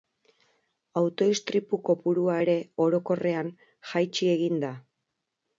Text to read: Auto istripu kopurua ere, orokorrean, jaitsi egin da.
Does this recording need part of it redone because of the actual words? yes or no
no